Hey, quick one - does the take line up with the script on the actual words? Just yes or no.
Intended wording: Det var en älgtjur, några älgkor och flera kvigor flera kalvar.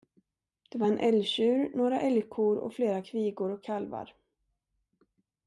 no